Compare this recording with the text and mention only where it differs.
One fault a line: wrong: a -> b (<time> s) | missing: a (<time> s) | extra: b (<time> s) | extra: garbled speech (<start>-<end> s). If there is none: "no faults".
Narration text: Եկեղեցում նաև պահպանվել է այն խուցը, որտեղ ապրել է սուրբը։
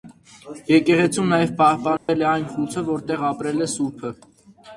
no faults